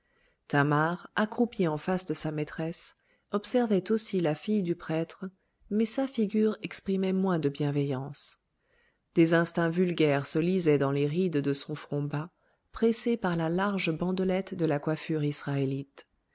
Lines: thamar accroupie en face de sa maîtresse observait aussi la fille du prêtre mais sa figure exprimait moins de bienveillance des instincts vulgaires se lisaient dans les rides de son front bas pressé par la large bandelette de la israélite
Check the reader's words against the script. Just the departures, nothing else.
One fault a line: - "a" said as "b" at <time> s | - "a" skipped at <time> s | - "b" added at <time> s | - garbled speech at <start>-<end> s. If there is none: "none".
- "coiffure" added at 14.8 s